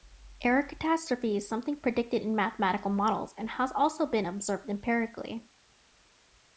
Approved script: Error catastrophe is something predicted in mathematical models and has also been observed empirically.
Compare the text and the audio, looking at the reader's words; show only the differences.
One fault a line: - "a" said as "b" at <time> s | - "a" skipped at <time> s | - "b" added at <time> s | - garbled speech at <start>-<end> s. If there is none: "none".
none